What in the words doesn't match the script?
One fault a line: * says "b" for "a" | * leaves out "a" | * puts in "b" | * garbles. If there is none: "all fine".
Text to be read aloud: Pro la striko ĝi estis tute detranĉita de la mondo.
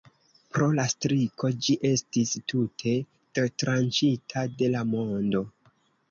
all fine